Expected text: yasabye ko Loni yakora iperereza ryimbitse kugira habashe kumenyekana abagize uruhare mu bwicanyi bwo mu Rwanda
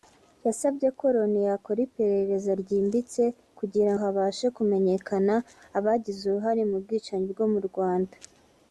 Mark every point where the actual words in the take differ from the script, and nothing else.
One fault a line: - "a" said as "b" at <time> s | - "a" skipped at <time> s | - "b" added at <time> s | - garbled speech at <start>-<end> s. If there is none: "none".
none